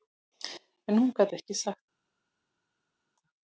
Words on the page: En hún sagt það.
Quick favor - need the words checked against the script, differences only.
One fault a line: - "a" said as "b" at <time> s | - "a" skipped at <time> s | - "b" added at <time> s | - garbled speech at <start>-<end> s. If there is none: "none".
- "gat ekki" added at 1.2 s